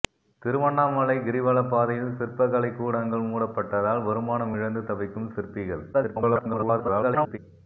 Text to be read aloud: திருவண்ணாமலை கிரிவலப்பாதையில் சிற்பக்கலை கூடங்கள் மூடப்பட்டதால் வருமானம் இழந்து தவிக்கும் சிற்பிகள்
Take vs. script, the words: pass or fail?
fail